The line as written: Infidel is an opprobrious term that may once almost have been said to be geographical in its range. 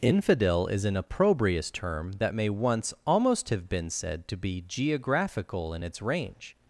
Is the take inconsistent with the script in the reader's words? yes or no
no